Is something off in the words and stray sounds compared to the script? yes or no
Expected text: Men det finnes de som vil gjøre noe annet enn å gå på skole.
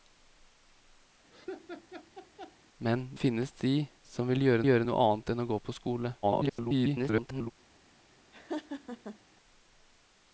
yes